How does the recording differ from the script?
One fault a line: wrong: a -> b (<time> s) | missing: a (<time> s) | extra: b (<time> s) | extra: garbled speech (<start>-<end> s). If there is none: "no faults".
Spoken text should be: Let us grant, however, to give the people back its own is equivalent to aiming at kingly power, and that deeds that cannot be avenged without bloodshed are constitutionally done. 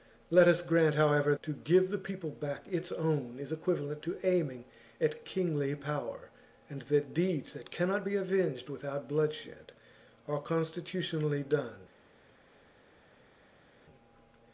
no faults